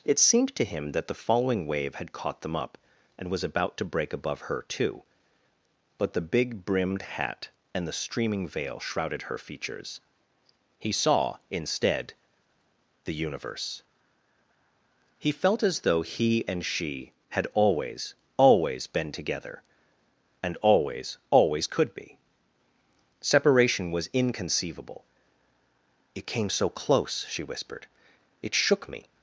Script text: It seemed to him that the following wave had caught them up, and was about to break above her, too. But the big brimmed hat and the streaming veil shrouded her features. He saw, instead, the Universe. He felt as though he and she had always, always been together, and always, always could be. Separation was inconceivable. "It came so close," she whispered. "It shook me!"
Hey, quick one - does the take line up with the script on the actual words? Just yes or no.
yes